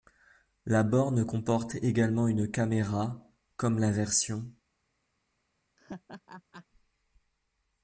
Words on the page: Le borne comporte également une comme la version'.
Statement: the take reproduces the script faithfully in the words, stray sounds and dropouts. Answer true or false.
false